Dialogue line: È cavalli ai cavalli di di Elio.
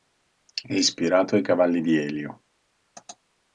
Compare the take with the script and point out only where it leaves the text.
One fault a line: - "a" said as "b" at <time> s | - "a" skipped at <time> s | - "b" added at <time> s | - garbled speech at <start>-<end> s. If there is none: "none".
- "cavalli" said as "ispirato" at 0.7 s
- "di" skipped at 2.0 s